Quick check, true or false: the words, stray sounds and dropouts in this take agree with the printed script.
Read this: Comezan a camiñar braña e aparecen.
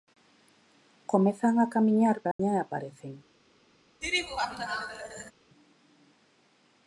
false